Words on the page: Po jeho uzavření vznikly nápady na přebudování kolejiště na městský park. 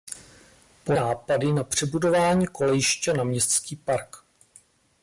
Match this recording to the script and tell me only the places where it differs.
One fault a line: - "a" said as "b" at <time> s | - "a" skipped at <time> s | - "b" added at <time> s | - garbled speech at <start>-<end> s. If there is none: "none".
- "jeho uzavření vznikly" skipped at 0.9 s